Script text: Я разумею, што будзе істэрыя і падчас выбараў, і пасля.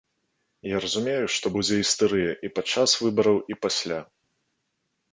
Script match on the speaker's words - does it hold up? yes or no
yes